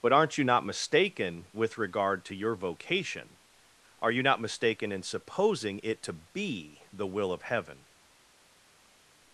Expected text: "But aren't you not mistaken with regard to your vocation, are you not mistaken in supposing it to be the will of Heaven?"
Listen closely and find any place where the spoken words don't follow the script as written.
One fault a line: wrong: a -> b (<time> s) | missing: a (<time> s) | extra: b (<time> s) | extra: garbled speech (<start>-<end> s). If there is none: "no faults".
no faults